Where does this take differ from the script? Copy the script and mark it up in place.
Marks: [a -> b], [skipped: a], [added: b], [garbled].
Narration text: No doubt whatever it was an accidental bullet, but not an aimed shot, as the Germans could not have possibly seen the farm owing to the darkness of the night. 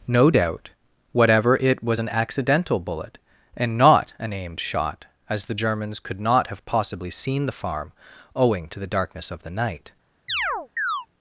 No doubt whatever it was an accidental bullet, [but -> and] not an aimed shot, as the Germans could not have possibly seen the farm owing to the darkness of the night.